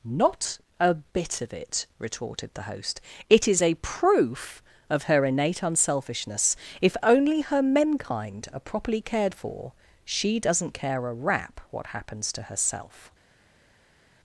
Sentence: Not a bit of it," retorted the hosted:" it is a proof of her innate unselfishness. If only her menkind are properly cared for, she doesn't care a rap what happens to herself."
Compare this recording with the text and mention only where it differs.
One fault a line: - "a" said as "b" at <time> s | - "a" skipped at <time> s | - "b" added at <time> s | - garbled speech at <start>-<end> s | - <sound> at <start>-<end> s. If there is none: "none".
- "hosted" said as "host" at 2.6 s